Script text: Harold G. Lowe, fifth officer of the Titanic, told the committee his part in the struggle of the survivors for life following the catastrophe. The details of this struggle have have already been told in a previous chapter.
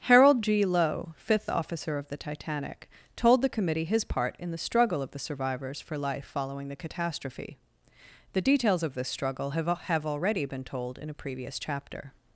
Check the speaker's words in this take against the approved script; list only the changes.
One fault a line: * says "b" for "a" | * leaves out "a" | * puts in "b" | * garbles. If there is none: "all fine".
all fine